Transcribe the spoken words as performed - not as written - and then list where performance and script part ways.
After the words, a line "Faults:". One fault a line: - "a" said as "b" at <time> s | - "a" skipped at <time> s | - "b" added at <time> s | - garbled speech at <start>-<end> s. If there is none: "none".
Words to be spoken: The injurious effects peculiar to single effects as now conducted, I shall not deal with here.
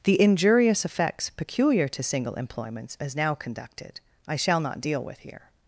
The injurious effects peculiar to single employments as now conducted, I shall not deal with here.
Faults:
- "effects" said as "employments" at 2.3 s